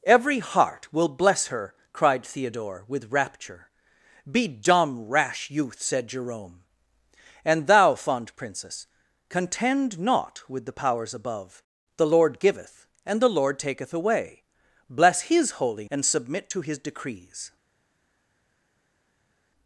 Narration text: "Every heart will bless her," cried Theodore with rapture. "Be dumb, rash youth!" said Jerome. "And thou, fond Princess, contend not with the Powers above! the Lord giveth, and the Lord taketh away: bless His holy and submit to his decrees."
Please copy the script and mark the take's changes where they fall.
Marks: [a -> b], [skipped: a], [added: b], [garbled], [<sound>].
"Every heart will bless her," cried Theodore with rapture. "Be dumb, rash youth!" said Jerome. "And thou, fond Princess, contend not with the Powers above! the Lord giveth, and the Lord taketh away: bless His holy and submit to his decrees."